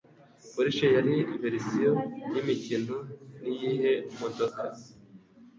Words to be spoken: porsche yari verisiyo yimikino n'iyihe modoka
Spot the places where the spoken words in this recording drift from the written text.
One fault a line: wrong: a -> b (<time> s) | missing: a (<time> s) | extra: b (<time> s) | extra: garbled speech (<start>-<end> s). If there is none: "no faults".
no faults